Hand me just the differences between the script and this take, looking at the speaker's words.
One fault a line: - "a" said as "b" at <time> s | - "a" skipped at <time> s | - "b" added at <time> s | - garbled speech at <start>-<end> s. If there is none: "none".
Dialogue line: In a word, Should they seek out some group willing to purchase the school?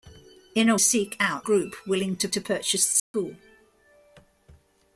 - "word Should they" skipped at 0.8 s
- "some" skipped at 1.5 s
- "to" added at 2.3 s